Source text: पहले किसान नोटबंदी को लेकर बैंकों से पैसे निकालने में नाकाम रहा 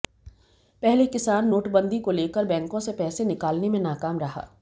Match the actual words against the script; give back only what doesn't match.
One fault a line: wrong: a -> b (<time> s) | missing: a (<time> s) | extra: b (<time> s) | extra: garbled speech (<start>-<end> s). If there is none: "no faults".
no faults